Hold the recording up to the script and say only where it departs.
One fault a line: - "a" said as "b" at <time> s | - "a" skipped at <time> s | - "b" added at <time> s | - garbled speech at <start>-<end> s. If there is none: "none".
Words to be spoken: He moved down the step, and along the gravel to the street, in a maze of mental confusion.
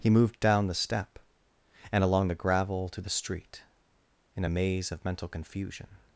none